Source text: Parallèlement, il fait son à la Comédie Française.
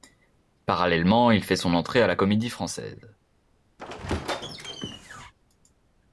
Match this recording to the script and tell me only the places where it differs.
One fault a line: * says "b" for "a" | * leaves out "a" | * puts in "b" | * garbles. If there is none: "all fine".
* puts in "entrée"